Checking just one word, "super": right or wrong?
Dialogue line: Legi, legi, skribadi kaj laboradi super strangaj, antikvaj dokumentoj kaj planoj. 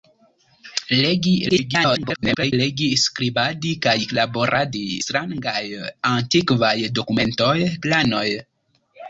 wrong